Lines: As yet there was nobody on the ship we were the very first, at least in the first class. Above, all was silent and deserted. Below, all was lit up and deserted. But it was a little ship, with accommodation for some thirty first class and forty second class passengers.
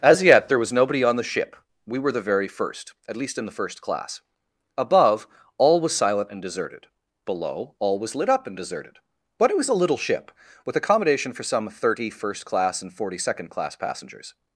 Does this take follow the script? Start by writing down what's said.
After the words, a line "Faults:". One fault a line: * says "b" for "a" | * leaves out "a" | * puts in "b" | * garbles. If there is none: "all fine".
As yet there was nobody on the ship we were the very first, at least in the first class. Above, all was silent and deserted. Below, all was lit up and deserted. But it was a little ship, with accommodation for some thirty first class and forty second class passengers.
Faults:
all fine